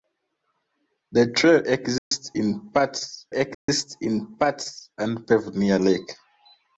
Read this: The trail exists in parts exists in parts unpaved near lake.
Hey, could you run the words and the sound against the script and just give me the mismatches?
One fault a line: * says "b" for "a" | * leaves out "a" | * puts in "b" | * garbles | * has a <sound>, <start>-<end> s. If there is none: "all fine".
* has a dropout, 2.0-2.1 s
* has a dropout, 3.5-3.7 s